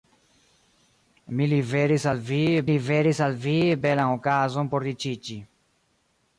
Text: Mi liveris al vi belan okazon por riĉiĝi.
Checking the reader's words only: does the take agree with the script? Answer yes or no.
no